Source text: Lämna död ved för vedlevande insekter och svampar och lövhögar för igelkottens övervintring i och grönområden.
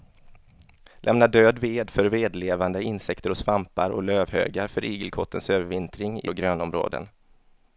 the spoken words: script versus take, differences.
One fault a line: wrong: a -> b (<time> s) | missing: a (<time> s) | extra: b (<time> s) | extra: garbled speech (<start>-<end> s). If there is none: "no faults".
no faults